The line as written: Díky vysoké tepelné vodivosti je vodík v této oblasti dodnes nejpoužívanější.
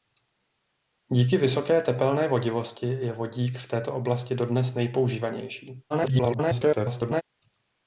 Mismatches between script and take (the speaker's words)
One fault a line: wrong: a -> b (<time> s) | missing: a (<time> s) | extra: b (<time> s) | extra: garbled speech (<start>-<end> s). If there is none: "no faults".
extra: garbled speech (5.9-7.2 s)